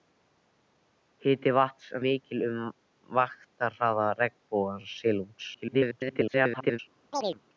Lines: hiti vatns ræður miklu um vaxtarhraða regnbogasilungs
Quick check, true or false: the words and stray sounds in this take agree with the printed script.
false